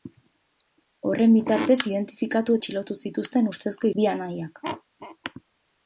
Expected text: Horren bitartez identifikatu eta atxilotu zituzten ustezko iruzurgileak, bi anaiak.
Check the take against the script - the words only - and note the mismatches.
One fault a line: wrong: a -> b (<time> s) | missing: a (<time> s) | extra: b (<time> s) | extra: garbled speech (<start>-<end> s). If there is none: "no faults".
missing: eta (2.6 s)
missing: iruzurgileak (3.9 s)